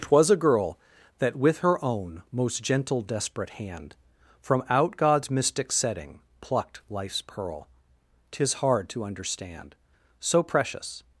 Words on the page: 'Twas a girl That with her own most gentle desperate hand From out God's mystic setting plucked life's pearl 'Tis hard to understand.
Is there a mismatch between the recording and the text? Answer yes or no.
yes